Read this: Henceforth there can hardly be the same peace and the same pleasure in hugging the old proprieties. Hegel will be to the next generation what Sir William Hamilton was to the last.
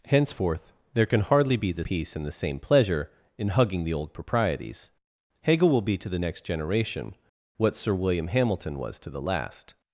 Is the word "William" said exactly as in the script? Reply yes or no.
yes